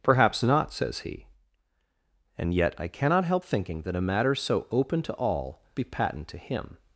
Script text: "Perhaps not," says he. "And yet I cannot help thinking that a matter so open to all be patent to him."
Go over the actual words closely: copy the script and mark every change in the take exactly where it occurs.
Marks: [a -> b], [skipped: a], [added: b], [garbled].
"Perhaps not," says he. "And yet I cannot help thinking that a matter so open to all be patent to him."